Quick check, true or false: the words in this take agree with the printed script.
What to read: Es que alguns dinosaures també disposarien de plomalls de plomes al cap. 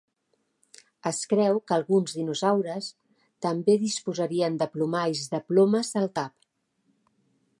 false